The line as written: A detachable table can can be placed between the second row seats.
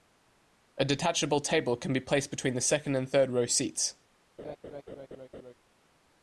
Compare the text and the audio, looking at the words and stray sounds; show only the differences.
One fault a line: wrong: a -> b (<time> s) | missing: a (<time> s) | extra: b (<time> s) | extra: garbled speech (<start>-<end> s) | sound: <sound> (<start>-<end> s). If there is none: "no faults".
missing: can (1.9 s)
extra: and third (3.0 s)
sound: laugh (4.4-5.5 s)